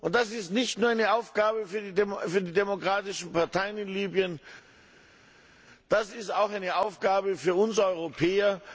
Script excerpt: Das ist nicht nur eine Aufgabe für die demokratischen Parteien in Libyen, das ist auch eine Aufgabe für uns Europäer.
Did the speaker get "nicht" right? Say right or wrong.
right